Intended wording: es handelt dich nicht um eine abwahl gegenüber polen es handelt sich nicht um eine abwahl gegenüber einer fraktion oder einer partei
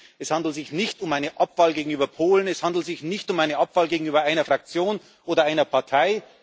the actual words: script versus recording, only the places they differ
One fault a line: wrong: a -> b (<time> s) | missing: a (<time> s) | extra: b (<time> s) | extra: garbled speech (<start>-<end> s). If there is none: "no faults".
wrong: dich -> sich (0.6 s)